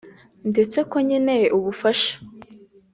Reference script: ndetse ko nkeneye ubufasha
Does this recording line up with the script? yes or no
yes